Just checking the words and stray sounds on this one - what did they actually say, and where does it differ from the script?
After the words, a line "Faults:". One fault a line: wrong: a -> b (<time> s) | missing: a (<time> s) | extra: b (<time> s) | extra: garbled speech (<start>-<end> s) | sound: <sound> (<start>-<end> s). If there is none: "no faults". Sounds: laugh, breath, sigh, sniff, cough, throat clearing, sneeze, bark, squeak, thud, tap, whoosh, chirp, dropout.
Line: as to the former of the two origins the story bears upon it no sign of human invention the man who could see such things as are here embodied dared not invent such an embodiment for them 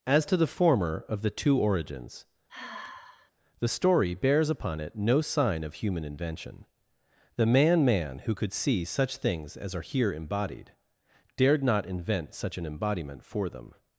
as to the former of the two origins the story bears upon it no sign of human invention the man man who could see such things as are here embodied dared not invent such an embodiment for them
Faults:
sound: sigh (2.5-3.3 s)
extra: man (7.9 s)